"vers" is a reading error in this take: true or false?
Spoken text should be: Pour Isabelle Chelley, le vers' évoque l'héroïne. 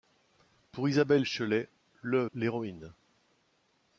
true